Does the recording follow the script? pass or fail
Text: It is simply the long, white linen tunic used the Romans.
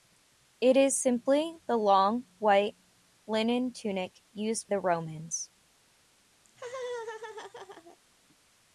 pass